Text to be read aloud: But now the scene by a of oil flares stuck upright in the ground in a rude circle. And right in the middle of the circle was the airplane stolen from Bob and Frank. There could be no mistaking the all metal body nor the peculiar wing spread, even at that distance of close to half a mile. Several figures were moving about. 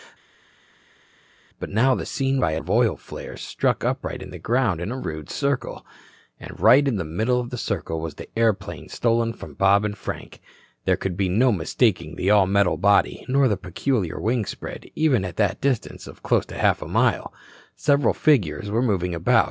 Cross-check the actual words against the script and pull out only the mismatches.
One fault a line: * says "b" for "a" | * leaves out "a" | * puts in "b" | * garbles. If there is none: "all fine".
all fine